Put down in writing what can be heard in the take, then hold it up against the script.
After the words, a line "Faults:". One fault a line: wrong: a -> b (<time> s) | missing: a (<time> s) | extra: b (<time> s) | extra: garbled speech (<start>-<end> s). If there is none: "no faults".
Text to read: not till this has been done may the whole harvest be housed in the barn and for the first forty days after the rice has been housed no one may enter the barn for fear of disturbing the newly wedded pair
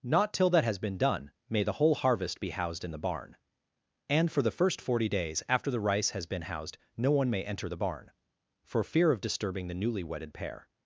not till that has been done may the whole harvest be housed in the barn and for the first forty days after the rice has been housed no one may enter the barn for fear of disturbing the newly wedded pair
Faults:
wrong: this -> that (0.5 s)